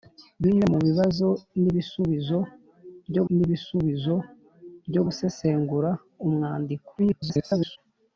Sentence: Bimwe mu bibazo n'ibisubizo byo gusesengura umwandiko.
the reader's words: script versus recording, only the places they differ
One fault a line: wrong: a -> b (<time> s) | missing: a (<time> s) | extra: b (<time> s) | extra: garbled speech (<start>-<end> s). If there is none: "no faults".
extra: n'ibisubizo byo (3.3 s)
extra: garbled speech (7.0-7.8 s)